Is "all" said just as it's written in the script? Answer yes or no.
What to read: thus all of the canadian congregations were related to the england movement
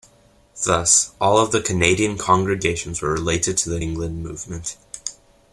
yes